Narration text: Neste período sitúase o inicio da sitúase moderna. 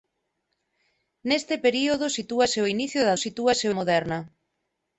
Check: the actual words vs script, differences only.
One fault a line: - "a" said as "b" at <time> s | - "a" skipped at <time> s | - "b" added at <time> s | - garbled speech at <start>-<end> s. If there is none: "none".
none